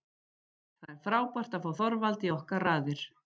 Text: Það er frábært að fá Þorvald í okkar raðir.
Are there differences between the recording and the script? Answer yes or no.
no